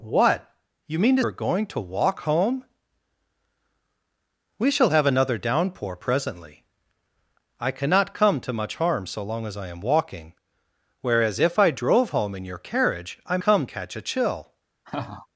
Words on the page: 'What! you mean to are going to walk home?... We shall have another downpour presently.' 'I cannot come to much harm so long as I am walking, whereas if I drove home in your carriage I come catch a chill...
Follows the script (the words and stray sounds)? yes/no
no